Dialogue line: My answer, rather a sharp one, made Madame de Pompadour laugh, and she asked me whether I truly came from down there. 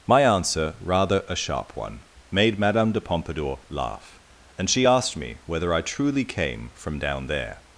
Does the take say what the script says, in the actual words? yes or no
yes